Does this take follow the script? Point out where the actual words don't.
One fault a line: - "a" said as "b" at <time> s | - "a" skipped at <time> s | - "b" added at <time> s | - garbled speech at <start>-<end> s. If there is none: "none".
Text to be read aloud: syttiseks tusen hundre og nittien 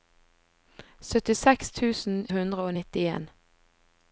none